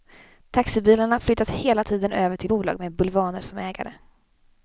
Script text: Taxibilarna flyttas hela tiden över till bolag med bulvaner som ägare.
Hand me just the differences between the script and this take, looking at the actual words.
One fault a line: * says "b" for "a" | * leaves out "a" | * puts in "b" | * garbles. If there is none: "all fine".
all fine